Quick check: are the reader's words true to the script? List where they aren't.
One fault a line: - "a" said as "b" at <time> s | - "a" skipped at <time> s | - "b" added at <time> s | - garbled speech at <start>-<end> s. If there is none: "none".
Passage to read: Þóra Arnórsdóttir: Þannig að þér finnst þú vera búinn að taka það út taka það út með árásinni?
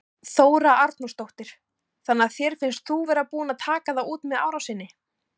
- "taka það út" skipped at 4.3 s